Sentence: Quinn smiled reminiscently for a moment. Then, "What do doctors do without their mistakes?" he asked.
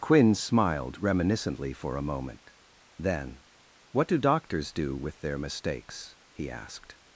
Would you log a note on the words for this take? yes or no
yes